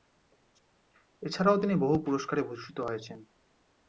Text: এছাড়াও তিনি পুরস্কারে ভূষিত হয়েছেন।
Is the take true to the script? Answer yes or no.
no